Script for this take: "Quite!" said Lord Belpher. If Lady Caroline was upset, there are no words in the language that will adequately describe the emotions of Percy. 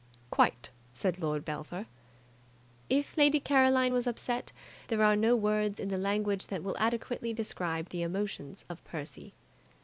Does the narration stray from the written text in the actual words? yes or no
no